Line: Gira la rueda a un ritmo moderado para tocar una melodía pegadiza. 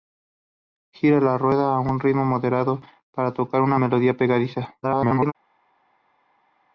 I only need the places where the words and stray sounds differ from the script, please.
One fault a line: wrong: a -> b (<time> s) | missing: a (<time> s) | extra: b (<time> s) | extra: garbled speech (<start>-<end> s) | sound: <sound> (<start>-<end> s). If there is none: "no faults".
extra: garbled speech (4.8-5.3 s)